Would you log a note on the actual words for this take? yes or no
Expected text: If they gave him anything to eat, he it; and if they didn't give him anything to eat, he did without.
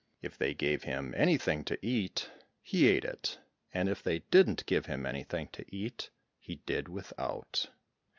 yes